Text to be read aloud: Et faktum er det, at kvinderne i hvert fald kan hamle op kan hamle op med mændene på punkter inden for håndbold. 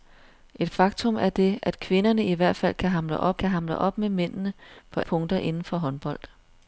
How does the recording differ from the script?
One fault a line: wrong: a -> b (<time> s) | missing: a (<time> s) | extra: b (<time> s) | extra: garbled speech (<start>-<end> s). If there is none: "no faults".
no faults